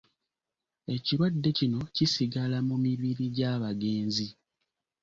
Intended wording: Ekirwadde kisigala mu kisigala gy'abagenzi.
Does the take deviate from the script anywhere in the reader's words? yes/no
yes